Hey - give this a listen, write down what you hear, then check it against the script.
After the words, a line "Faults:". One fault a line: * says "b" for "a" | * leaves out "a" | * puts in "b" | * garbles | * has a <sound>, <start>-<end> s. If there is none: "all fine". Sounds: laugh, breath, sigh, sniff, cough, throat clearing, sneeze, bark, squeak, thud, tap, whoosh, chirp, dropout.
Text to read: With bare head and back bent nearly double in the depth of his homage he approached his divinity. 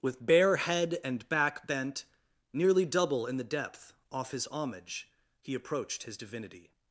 With bare head and back bent nearly double in the depth off his homage he approached his divinity.
Faults:
* says "off" for "of"